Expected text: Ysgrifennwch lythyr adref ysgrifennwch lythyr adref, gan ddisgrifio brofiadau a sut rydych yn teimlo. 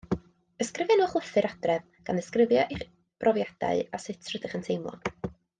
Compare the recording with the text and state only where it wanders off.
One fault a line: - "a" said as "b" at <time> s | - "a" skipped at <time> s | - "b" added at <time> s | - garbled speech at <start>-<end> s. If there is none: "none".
- "ysgrifennwch lythyr adref" skipped at 1.8 s
- "eich" added at 2.8 s